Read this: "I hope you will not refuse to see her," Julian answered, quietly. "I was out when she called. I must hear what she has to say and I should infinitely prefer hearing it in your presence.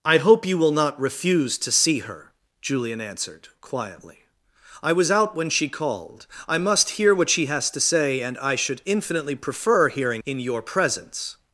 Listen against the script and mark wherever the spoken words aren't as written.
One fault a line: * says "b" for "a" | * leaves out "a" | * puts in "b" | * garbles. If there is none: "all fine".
* leaves out "it"